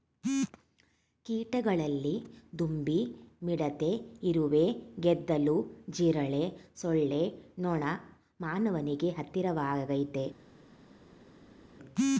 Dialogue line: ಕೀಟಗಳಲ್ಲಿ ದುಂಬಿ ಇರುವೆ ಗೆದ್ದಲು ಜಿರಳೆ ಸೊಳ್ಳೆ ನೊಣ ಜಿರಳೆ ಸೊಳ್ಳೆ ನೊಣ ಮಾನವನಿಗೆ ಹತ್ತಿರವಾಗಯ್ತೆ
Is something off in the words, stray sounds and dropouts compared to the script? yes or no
yes